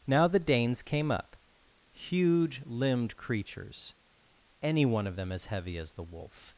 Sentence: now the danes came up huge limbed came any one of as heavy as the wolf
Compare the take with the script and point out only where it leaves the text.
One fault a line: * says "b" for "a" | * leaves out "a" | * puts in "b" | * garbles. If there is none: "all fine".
* says "creatures" for "came"
* puts in "them"